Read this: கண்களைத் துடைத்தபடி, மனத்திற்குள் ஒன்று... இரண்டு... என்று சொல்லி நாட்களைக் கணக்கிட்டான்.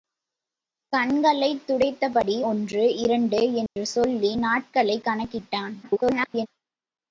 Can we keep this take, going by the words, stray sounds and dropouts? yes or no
no